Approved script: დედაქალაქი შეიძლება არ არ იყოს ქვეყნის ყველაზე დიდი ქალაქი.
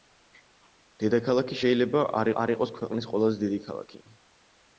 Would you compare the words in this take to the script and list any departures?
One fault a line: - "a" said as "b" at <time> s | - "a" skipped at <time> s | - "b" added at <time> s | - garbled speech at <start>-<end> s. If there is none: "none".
none